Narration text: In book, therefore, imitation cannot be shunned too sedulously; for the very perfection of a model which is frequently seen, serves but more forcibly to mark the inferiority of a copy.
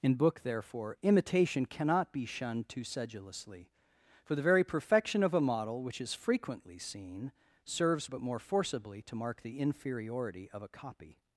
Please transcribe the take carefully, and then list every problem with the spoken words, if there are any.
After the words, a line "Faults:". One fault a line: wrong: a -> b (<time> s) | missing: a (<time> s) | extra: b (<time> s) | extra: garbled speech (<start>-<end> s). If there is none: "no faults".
In book, therefore, imitation cannot be shunned too sedulously; for the very perfection of a model which is frequently seen, serves but more forcibly to mark the inferiority of a copy.
Faults:
no faults